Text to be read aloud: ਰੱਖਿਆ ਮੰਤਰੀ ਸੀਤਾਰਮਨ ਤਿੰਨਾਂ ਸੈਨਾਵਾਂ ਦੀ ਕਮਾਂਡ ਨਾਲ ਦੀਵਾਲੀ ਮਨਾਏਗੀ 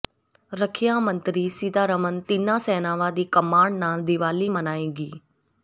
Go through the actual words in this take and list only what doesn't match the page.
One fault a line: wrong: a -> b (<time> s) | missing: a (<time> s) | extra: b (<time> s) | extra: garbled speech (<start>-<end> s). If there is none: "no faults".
no faults